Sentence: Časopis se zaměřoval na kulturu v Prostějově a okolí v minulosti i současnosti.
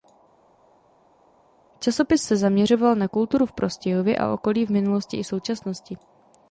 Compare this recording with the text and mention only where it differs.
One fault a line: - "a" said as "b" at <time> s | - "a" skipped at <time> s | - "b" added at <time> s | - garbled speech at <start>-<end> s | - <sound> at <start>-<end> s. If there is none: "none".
none